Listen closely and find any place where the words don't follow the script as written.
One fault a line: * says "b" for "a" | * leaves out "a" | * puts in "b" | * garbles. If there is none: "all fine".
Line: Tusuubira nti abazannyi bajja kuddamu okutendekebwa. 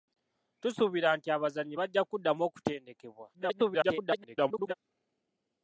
* garbles